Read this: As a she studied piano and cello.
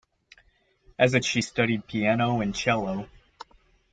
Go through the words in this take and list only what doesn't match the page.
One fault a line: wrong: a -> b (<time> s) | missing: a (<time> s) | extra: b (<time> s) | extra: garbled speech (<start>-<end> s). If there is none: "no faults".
no faults